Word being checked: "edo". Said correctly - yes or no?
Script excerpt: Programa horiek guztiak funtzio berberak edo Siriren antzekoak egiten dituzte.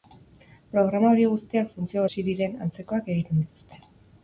no